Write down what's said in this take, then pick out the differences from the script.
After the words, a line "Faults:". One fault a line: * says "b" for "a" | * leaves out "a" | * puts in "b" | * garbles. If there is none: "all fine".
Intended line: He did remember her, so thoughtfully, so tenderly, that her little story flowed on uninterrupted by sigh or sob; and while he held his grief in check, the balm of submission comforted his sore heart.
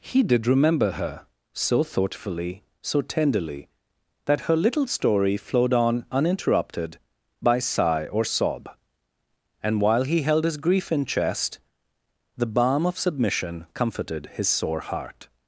He did remember her, so thoughtfully, so tenderly, that her little story flowed on uninterrupted by sigh or sob; and while he held his grief in chest, the balm of submission comforted his sore heart.
Faults:
* says "chest" for "check"